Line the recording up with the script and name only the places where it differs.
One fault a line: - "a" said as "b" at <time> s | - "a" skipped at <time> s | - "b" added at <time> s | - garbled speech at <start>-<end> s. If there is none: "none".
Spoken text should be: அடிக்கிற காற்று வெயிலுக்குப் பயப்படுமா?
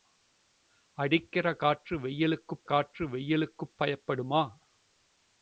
- "காற்று வெயிலுக்குப்" added at 2.6 s